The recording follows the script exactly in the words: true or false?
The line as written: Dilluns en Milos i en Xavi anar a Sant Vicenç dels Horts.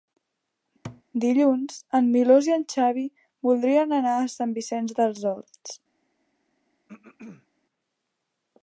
false